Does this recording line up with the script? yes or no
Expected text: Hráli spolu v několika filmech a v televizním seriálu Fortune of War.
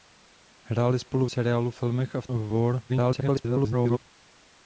no